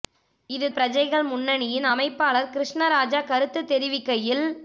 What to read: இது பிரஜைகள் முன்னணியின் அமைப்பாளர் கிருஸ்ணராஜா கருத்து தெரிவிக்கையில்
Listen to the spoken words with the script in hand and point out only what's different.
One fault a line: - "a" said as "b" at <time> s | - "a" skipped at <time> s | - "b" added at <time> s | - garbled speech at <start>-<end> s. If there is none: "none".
none